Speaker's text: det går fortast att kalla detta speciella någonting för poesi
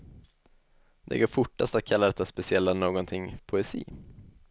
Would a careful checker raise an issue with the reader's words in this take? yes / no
yes